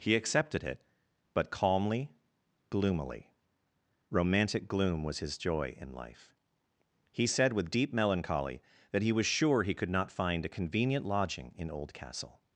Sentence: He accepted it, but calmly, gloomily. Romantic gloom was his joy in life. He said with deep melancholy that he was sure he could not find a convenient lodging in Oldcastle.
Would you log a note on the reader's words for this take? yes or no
no